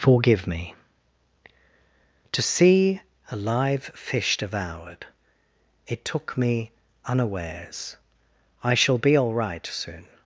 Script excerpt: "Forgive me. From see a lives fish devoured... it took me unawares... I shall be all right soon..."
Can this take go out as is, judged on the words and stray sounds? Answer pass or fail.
fail